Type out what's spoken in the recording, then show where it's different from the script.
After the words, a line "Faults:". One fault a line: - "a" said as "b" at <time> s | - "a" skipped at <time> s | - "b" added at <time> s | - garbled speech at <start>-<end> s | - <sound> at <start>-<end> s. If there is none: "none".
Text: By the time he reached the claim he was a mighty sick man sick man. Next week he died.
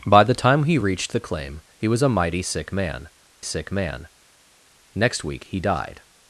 By the time he reached the claim he was a mighty sick man sick man. Next week he died.
Faults:
none